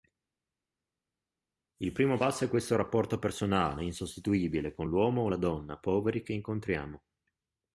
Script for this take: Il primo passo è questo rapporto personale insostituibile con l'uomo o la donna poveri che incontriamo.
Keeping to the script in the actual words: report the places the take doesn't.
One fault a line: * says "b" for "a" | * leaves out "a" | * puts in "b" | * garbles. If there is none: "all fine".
all fine